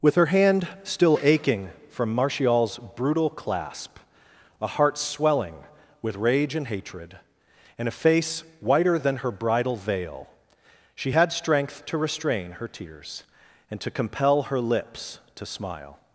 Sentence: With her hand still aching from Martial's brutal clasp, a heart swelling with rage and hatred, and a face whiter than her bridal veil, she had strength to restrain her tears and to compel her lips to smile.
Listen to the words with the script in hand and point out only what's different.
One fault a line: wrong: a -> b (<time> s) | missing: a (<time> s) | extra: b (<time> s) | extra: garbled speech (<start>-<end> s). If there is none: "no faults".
no faults